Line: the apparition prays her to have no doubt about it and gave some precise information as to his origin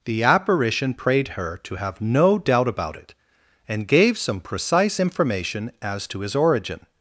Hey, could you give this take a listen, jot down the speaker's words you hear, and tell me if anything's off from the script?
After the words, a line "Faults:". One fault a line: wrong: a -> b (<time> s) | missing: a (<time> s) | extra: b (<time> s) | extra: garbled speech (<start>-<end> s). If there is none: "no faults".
the apparition prayed her to have no doubt about it and gave some precise information as to his origin
Faults:
wrong: prays -> prayed (0.9 s)